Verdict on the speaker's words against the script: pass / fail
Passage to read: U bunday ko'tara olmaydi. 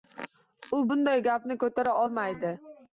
fail